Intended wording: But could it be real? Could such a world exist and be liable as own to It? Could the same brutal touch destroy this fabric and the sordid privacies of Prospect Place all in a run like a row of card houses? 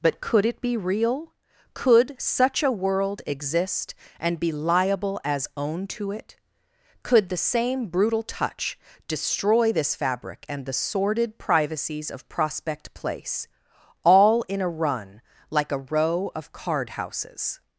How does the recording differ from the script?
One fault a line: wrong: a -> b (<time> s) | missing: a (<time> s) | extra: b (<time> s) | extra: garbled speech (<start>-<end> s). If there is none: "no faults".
no faults